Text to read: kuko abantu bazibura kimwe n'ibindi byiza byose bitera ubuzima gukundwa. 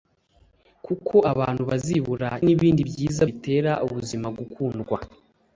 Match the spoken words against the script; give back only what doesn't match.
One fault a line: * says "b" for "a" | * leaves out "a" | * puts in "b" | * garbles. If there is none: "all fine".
* leaves out "kimwe"
* leaves out "byose"